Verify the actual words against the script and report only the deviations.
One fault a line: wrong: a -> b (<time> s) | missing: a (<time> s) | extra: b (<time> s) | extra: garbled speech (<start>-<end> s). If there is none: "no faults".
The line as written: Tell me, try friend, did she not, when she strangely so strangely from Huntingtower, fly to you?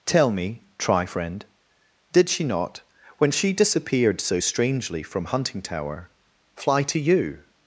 wrong: strangely -> disappeared (3.5 s)